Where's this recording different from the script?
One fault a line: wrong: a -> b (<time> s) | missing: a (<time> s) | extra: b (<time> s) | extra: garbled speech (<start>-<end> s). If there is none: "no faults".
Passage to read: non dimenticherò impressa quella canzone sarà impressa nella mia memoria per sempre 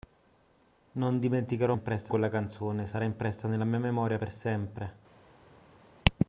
no faults